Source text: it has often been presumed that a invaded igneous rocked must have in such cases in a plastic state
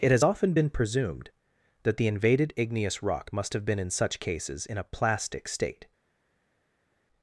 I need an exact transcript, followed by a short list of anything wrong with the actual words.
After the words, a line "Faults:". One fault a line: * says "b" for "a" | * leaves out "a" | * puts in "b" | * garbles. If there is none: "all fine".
it has often been presumed that the invaded igneous rock must have been in such cases in a plastic state
Faults:
* says "the" for "a"
* says "rock" for "rocked"
* puts in "been"